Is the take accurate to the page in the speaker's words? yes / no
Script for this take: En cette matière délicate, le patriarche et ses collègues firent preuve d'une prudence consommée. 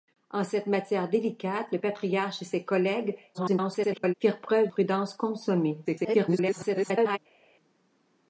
no